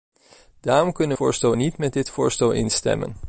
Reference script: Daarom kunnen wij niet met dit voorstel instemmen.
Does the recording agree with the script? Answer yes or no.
no